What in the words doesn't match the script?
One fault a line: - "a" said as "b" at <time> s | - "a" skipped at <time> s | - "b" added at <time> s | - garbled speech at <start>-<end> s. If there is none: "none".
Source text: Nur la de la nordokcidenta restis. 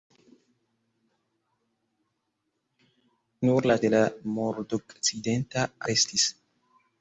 none